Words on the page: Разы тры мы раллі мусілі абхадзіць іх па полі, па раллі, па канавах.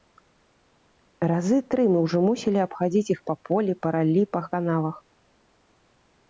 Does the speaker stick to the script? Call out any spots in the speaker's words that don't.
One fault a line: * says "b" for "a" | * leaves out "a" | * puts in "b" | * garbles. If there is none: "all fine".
* says "ўжо" for "раллі"